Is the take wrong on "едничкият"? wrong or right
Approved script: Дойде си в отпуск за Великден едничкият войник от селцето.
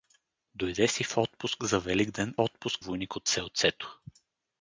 wrong